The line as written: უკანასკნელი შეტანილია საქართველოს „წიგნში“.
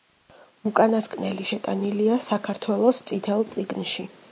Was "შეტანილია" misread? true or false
false